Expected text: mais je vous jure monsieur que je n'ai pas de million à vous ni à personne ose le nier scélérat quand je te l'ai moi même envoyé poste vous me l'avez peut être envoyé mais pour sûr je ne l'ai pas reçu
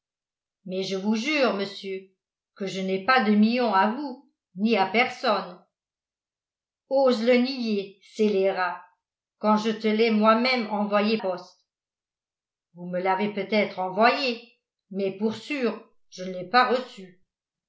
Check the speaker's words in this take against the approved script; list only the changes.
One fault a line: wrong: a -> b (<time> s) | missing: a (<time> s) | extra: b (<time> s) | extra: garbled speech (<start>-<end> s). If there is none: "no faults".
no faults